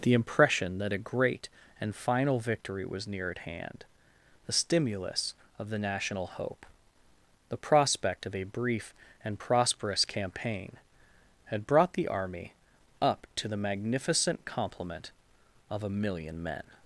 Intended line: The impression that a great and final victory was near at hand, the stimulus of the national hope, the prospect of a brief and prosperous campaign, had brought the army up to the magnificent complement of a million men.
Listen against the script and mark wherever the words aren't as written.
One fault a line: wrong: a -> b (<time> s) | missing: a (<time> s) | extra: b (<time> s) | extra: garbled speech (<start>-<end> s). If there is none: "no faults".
no faults